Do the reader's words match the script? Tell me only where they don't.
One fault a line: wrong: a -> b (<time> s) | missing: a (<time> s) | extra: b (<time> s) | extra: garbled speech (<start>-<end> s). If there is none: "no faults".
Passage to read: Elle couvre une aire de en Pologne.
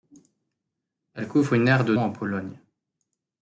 no faults